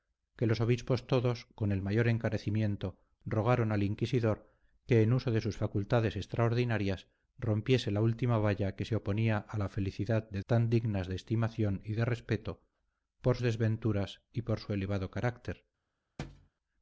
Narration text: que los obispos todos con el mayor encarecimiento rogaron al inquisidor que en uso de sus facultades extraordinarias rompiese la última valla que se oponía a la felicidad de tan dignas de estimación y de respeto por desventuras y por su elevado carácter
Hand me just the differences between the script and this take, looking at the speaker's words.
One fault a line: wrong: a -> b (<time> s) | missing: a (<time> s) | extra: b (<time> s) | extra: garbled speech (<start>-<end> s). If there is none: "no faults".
no faults